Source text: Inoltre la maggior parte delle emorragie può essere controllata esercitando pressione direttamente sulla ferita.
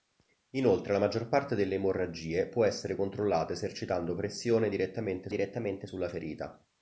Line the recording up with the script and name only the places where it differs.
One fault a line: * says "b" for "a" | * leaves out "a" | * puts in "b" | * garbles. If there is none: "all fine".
* puts in "direttamente"